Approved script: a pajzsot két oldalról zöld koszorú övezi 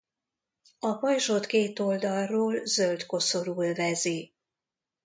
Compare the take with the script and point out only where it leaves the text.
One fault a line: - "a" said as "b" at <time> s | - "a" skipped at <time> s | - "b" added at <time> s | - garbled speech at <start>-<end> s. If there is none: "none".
none